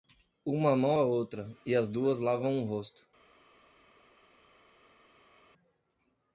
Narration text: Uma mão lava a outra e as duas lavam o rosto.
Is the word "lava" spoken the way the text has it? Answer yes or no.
no